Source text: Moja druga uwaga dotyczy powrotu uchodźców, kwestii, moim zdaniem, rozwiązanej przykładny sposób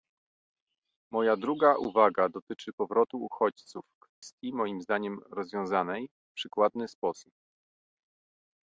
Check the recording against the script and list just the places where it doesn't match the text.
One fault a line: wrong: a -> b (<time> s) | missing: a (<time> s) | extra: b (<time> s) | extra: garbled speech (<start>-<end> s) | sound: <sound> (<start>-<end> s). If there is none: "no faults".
sound: dropout (4.1-4.2 s)
extra: w (6.1 s)